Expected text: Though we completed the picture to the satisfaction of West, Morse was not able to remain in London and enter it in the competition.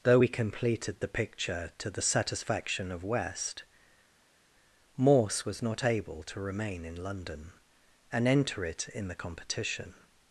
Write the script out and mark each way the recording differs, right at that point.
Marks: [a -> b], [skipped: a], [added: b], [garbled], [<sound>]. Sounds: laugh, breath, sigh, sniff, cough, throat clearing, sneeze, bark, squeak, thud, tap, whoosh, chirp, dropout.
Though we completed the picture to the satisfaction of West, Morse was not able to remain in London and enter it in the competition.